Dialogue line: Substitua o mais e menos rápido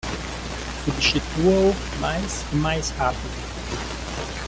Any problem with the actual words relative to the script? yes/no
yes